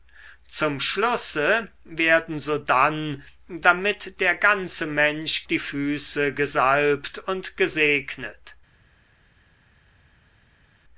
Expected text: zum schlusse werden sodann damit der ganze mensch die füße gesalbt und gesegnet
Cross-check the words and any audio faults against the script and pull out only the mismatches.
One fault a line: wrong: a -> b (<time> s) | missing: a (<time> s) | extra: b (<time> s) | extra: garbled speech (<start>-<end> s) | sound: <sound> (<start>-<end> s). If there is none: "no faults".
no faults